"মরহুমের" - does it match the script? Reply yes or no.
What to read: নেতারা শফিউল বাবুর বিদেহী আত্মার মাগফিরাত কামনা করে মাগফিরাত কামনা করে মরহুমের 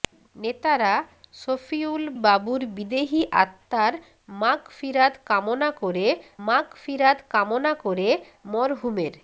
yes